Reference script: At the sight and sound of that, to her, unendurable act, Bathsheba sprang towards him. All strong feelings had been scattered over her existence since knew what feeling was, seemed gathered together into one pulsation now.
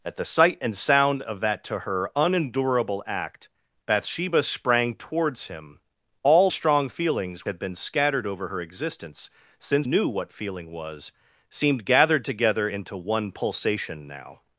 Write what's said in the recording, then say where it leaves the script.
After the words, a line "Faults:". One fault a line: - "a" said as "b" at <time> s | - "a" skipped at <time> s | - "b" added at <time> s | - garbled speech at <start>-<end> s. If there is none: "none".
At the sight and sound of that, to her, unendurable act, Bathsheba sprang towards him. All strong feelings had been scattered over her existence since knew what feeling was, seemed gathered together into one pulsation now.
Faults:
none